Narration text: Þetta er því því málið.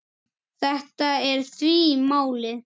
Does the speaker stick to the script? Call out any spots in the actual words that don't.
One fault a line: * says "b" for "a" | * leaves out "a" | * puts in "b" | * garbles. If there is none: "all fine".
* leaves out "því"